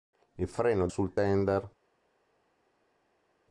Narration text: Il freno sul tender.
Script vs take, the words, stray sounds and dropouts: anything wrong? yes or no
no